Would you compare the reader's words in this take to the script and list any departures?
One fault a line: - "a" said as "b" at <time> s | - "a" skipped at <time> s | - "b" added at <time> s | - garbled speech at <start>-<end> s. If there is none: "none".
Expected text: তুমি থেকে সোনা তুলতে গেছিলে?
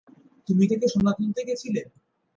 none